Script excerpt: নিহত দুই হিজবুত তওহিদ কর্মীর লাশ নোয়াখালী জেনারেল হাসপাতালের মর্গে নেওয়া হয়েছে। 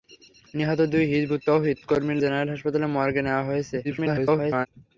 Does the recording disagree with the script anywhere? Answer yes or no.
yes